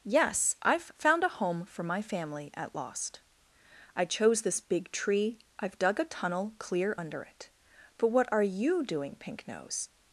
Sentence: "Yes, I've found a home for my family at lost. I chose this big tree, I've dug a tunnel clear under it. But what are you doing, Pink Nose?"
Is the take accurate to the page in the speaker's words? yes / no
yes